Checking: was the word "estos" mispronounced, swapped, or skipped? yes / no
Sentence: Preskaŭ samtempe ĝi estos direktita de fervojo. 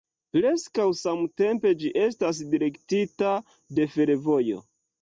yes